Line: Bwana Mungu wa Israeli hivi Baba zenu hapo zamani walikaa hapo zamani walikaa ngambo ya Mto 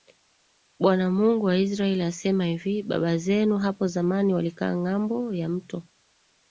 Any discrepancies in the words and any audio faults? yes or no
yes